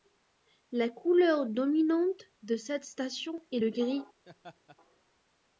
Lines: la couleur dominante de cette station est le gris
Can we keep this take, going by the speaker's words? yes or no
yes